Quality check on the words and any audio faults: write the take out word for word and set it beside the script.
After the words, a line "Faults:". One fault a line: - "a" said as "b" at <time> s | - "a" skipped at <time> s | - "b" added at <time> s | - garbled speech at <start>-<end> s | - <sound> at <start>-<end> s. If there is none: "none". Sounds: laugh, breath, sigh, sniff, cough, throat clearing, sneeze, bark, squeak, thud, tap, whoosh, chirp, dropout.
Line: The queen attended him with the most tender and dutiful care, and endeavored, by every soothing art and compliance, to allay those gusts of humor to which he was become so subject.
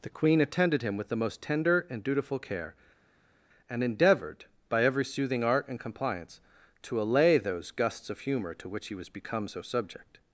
The queen attended him with the most tender and dutiful care, and endeavored, by every soothing art and compliance, to allay those gusts of humor to which he was become so subject.
Faults:
none